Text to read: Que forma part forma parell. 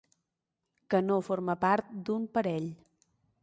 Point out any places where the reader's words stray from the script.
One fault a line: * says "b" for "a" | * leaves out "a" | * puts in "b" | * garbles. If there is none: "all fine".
* puts in "no"
* says "d'un" for "forma"